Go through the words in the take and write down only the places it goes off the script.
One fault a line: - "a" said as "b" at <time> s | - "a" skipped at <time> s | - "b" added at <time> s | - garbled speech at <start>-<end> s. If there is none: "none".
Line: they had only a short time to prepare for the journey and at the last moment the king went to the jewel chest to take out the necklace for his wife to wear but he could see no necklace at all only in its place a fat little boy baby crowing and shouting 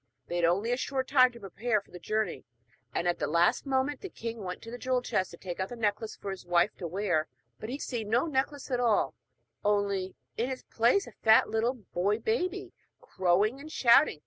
- "could" skipped at 7.8 s